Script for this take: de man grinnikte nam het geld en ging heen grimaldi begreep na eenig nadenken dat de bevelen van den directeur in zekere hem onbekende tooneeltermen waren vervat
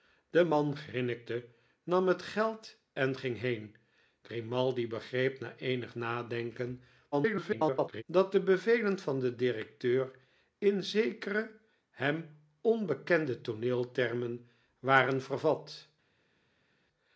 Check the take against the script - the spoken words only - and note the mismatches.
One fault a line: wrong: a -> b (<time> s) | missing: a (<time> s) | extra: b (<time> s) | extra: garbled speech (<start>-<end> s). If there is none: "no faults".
extra: garbled speech (7.1-8.0 s)